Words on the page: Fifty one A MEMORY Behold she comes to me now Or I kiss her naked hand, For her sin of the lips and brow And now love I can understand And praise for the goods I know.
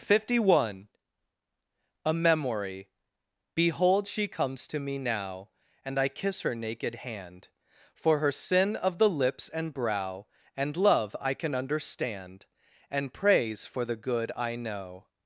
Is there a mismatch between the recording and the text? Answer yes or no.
yes